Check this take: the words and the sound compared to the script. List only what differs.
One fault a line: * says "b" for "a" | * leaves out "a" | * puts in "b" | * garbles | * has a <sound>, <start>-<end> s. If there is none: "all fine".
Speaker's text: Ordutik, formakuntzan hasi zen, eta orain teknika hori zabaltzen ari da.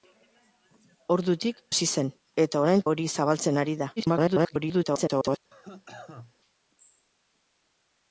* leaves out "formakuntzan"
* leaves out "teknika"
* garbles
* has a cough, 5.5-6.3 s